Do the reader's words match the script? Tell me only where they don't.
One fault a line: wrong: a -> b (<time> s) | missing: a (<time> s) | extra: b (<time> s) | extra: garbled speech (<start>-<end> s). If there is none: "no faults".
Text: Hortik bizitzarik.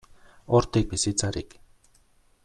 no faults